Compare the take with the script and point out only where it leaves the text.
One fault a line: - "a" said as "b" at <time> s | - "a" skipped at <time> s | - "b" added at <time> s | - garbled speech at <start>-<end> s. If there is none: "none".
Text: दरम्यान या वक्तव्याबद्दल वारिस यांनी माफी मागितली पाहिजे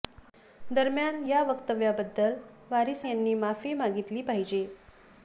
none